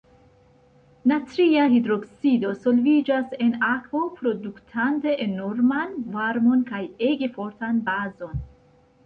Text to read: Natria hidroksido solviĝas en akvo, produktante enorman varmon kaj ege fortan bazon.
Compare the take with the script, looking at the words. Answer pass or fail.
pass